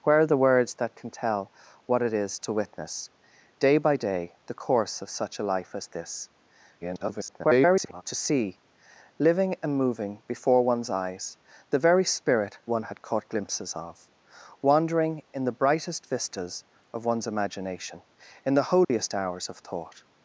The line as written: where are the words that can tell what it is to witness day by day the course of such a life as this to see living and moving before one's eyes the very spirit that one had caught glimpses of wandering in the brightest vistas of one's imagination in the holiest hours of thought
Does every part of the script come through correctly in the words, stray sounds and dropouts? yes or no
no